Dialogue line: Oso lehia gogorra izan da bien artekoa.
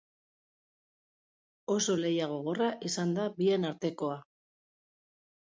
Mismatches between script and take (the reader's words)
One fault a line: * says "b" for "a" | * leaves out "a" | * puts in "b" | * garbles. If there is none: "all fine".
all fine